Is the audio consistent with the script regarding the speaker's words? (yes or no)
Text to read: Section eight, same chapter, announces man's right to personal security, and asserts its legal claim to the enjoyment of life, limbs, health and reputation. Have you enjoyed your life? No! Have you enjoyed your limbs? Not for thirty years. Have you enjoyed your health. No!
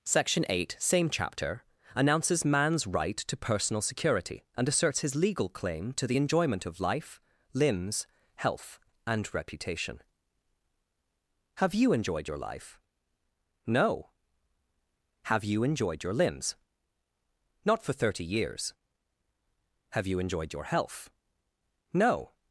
no